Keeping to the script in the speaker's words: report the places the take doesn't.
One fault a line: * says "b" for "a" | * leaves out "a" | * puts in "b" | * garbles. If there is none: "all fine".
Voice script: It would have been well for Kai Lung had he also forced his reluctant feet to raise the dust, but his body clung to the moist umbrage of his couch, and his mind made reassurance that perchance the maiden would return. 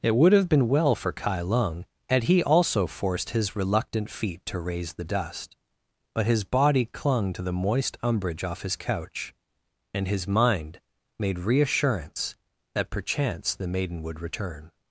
* says "off" for "of"